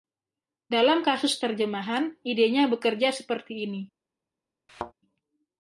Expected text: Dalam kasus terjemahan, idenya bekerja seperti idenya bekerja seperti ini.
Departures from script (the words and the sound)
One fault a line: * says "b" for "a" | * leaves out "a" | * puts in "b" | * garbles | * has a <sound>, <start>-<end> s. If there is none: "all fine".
* leaves out "idenya bekerja seperti"
* has a thud, 4.7-4.9 s